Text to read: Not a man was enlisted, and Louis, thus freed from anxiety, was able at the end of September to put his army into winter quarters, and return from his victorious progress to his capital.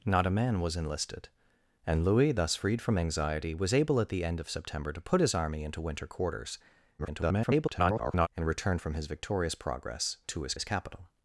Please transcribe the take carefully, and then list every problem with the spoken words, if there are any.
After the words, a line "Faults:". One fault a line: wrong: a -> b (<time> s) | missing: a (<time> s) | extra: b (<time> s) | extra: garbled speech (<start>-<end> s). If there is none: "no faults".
Not a man was enlisted, and Louis, thus freed from anxiety, was able at the end of September to put his army into winter quarters, [garbled] and return from his victorious progress to his his capital.
Faults:
extra: garbled speech (7.0-8.3 s)
extra: his (10.5 s)